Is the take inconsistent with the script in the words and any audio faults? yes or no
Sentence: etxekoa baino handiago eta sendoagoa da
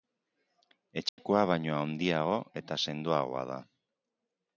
yes